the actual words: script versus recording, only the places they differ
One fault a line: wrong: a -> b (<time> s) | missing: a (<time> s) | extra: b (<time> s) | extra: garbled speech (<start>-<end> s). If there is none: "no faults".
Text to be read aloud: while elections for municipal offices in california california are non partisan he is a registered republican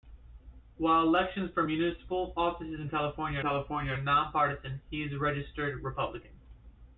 no faults